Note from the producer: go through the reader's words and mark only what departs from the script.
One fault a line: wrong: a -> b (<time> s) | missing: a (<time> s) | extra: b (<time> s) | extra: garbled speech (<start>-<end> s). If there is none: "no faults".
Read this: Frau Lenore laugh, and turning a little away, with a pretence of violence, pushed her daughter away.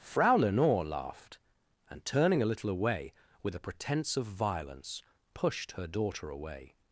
wrong: laugh -> laughed (0.8 s)